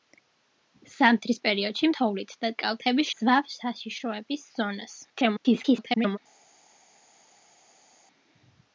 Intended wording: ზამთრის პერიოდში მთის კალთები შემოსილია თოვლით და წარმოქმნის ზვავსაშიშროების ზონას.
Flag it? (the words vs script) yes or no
yes